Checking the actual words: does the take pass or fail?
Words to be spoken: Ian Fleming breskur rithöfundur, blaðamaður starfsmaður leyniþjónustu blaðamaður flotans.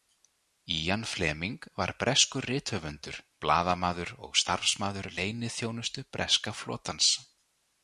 fail